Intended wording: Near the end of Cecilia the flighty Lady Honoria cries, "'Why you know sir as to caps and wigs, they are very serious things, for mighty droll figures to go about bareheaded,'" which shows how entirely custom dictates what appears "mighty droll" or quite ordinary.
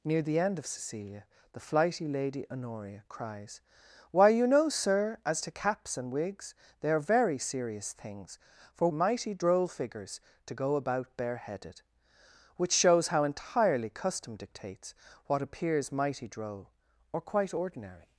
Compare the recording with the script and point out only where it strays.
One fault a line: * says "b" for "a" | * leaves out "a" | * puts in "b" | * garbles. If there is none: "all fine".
all fine